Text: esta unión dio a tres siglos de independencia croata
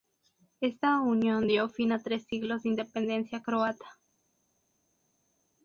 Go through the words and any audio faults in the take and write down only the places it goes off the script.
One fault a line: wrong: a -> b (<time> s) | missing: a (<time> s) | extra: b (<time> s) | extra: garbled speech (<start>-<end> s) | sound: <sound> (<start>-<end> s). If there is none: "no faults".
extra: fin (1.7 s)